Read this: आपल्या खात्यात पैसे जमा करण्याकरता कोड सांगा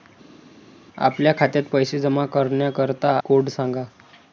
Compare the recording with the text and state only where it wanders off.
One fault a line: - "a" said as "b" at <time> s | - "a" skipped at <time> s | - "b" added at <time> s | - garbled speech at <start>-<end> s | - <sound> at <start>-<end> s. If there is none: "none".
none